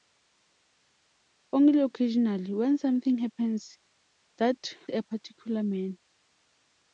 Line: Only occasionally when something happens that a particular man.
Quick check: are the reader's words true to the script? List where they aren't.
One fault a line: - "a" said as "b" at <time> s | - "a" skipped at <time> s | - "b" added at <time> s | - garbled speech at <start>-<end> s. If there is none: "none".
none